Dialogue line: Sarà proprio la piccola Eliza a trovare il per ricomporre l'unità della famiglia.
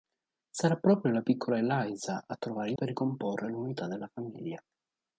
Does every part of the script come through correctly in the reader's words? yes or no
yes